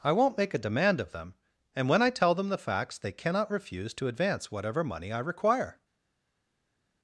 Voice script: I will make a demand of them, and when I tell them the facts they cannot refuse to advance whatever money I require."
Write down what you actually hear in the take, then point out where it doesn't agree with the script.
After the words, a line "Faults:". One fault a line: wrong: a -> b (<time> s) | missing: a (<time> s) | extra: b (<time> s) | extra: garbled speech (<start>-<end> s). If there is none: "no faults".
I won't make a demand of them, and when I tell them the facts they cannot refuse to advance whatever money I require."
Faults:
wrong: will -> won't (0.1 s)